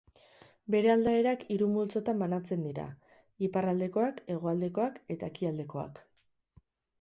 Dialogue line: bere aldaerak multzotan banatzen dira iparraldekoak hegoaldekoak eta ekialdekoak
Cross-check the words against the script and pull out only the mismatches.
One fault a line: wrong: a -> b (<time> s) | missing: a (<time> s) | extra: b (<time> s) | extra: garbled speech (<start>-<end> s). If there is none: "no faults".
extra: hiru (1.6 s)